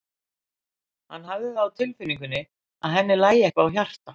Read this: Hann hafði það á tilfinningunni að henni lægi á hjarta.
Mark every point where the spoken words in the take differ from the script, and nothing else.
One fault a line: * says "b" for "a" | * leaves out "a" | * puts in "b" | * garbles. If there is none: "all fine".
* puts in "eitthvað"